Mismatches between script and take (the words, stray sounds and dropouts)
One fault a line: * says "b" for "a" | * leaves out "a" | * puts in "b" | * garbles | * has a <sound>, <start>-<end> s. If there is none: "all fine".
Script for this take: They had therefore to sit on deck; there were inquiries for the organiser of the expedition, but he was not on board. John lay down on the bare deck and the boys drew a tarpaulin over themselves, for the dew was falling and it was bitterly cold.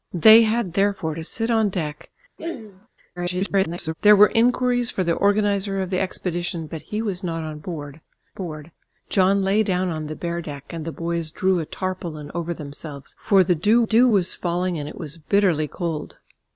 * has a throat clearing, 2.4-2.9 s
* garbles
* puts in "board"
* puts in "dew"